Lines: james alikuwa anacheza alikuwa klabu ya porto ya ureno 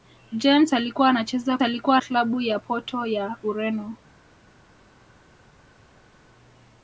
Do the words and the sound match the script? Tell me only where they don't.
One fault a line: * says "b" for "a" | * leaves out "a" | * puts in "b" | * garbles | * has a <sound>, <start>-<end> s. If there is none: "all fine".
all fine